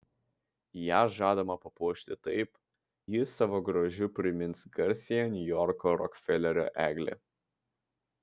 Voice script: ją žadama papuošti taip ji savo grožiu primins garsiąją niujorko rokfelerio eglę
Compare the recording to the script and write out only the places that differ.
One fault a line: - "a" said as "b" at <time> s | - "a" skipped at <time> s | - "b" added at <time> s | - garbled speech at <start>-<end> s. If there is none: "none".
none